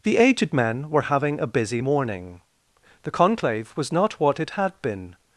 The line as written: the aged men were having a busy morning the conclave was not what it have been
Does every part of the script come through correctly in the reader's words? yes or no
no